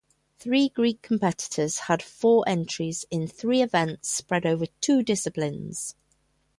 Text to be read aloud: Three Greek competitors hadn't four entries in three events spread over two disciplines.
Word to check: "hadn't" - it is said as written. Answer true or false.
false